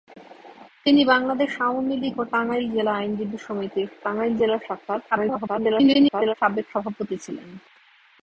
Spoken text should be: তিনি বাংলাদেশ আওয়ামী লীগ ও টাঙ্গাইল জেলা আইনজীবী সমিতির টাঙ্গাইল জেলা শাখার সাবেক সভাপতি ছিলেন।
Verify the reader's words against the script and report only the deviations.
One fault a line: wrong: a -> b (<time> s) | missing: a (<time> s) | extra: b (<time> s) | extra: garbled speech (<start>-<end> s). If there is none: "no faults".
extra: garbled speech (5.1-6.3 s)